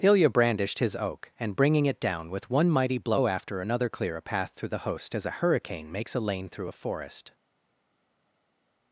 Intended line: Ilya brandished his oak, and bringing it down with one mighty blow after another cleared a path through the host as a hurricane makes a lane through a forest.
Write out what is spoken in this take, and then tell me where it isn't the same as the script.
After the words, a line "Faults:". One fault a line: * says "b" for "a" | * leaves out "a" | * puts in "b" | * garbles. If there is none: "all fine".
Ilya brandished his oak, and bringing it down with one mighty blow after another clear a path through the host as a hurricane makes a lane through a forest.
Faults:
* says "clear" for "cleared"